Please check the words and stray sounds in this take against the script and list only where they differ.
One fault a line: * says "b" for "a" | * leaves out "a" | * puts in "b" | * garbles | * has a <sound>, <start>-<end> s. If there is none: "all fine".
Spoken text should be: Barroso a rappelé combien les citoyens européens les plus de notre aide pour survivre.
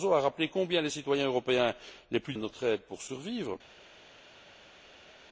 all fine